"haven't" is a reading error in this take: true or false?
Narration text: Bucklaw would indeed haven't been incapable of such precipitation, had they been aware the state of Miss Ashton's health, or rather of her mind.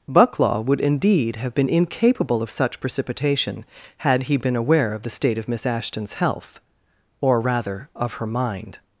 true